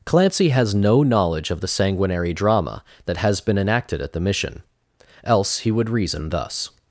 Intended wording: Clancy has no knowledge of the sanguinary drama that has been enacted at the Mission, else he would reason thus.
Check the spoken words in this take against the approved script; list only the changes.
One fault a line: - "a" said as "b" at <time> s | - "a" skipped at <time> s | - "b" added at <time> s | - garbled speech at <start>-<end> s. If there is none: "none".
none